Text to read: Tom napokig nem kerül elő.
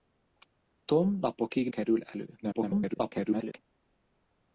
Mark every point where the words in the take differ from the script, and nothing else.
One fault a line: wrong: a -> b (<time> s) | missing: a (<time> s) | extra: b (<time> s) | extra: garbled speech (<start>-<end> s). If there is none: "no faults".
missing: nem (1.7 s)
extra: garbled speech (2.4-3.6 s)